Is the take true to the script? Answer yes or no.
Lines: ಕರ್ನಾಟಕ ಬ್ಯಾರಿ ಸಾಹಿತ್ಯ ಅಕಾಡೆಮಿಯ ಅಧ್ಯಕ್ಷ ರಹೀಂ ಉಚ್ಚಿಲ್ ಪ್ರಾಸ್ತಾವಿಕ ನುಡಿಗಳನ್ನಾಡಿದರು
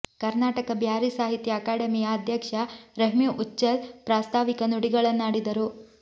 yes